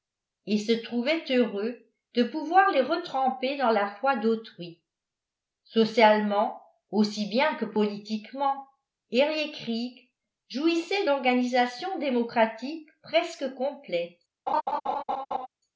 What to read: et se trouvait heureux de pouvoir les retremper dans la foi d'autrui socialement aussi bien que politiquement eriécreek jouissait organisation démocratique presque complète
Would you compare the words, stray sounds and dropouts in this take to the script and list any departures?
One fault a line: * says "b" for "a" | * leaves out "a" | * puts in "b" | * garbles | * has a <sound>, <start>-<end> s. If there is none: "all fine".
* has a laugh, 14.5-15.5 s